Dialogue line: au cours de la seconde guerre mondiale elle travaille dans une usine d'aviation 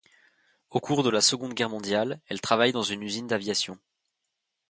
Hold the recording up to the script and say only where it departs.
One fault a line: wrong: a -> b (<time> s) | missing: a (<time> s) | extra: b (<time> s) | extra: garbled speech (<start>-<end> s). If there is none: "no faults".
no faults